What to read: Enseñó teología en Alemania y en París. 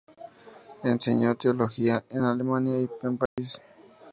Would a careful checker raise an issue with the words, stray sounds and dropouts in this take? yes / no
yes